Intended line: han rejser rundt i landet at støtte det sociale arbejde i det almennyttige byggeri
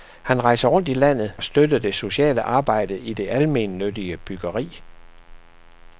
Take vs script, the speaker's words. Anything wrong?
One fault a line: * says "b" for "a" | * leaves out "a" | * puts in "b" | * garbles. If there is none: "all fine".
all fine